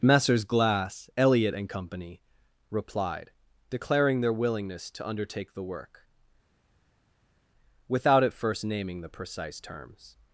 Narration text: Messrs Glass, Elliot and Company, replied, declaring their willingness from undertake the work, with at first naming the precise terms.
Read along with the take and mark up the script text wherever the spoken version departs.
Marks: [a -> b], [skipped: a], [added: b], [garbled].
Messrs Glass, Elliot and Company, replied, declaring their willingness [from -> to] undertake the work, [with -> without] at first naming the precise terms.